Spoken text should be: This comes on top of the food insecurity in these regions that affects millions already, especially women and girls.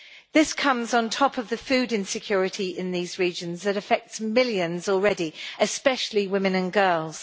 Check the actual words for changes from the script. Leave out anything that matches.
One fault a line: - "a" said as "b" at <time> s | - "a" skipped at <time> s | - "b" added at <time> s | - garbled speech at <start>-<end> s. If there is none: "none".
none